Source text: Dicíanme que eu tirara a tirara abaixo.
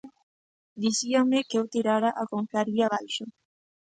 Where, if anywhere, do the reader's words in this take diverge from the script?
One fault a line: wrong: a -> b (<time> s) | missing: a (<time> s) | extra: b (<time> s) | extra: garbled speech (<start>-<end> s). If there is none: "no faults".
wrong: tirara -> confraría (2.3 s)